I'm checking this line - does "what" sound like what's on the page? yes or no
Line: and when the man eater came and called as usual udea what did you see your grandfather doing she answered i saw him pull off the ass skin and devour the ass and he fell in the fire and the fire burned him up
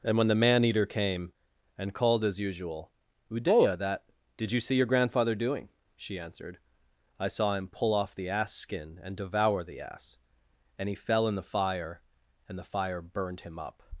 no